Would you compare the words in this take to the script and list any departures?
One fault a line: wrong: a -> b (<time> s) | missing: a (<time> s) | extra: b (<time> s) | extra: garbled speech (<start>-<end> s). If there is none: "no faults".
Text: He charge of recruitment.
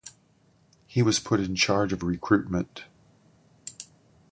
extra: was put in (1.0 s)